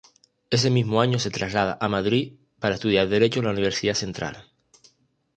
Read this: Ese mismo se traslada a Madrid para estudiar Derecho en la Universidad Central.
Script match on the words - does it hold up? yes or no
no